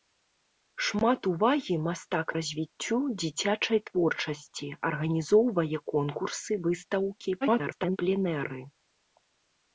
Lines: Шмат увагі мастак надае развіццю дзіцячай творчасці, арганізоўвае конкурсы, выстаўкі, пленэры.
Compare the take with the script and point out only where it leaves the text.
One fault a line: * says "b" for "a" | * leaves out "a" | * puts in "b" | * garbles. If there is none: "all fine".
* leaves out "надае"
* garbles